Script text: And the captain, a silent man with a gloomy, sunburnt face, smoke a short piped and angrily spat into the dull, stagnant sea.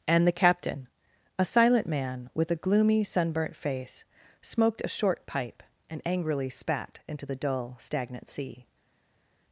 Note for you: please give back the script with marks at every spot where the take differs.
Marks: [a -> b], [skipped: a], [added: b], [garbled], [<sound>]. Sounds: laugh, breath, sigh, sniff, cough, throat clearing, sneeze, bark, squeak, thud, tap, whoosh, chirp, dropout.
And the captain, a silent man with a gloomy, sunburnt face, [smoke -> smoked] a short [piped -> pipe] and angrily spat into the dull, stagnant sea.